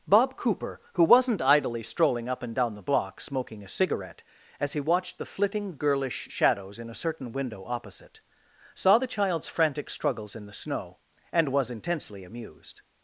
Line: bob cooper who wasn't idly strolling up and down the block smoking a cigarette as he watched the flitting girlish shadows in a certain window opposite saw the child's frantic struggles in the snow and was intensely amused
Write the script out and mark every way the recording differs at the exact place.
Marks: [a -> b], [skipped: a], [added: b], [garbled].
bob cooper who wasn't idly strolling up and down the block smoking a cigarette as he watched the flitting girlish shadows in a certain window opposite saw the child's frantic struggles in the snow and was intensely amused